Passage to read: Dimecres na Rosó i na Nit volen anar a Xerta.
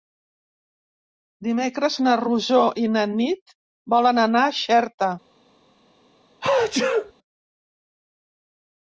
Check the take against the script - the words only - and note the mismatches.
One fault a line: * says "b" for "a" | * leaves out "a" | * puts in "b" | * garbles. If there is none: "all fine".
all fine